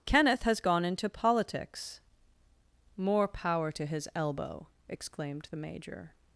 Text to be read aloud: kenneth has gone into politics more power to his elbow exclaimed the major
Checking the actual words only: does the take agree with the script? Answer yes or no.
yes